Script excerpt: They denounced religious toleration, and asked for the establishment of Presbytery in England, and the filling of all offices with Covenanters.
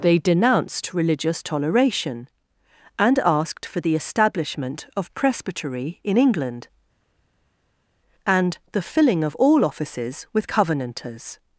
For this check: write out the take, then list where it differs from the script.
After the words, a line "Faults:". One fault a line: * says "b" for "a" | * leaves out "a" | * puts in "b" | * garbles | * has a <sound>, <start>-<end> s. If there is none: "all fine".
They denounced religious toleration, and asked for the establishment of Presbytery in England, and the filling of all offices with Covenanters.
Faults:
all fine